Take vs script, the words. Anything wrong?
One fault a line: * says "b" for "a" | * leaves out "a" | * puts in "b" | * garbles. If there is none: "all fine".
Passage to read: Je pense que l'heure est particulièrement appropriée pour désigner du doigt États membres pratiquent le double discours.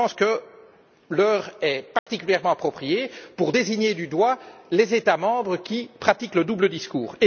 * puts in "les"
* puts in "qui"